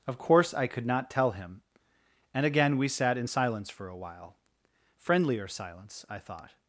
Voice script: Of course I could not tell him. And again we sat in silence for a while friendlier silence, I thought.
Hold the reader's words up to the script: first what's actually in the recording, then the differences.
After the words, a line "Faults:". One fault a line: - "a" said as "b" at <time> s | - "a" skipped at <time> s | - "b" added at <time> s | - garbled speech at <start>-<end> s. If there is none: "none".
Of course I could not tell him. And again we sat in silence for a while friendlier silence, I thought.
Faults:
none